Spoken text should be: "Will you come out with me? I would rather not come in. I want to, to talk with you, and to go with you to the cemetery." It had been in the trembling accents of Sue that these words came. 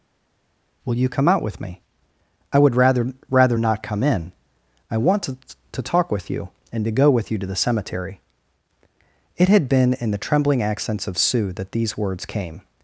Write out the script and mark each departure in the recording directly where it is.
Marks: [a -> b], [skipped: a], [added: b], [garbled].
"Will you come out with me? I would rather [added: rather] not come in. I want to, to talk with you, and to go with you to the cemetery." It had been in the trembling accents of Sue that these words came.